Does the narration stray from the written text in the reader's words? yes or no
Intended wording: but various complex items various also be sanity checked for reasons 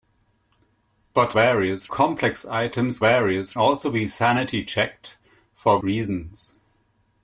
no